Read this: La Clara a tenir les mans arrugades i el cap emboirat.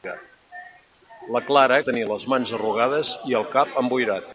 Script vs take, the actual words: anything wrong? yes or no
no